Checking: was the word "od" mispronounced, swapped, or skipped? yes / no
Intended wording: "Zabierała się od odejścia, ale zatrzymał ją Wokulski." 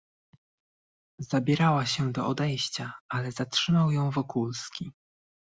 yes